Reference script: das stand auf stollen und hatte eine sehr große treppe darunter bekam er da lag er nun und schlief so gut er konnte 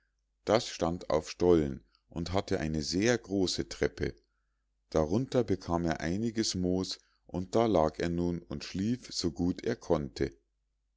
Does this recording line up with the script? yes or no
no